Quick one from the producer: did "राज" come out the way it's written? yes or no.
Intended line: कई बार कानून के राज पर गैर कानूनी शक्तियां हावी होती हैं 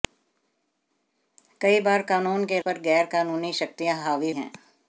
no